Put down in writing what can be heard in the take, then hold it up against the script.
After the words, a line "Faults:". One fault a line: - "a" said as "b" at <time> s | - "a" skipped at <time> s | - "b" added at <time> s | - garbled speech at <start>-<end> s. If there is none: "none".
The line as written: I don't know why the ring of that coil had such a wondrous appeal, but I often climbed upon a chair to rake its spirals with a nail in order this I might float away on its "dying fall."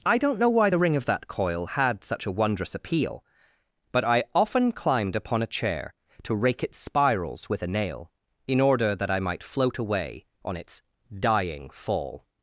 I don't know why the ring of that coil had such a wondrous appeal, but I often climbed upon a chair to rake its spirals with a nail in order that I might float away on its "dying fall."
Faults:
- "this" said as "that" at 9.0 s